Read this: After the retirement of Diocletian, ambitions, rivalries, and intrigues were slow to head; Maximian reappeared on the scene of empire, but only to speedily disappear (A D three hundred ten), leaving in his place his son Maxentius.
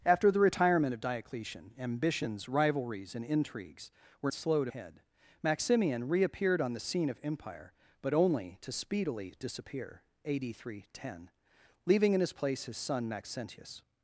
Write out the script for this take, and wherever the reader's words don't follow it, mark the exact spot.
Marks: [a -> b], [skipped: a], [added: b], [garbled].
After the retirement of Diocletian, ambitions, rivalries, and intrigues were slow to head; Maximian reappeared on the scene of empire, but only to speedily disappear (A D three hundred ten), leaving in his place his son Maxentius.